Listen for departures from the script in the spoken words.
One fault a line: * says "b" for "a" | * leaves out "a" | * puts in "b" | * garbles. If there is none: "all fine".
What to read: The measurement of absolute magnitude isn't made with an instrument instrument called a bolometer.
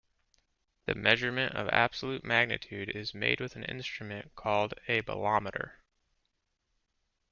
* says "is" for "isn't"
* leaves out "instrument"